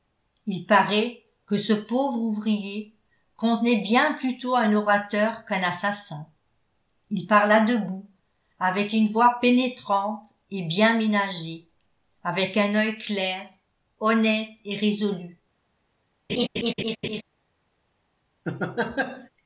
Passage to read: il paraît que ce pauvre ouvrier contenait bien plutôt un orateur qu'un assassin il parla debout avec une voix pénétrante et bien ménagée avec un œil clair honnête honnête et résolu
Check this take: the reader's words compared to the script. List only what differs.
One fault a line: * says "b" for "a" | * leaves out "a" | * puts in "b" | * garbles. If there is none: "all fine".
* leaves out "honnête"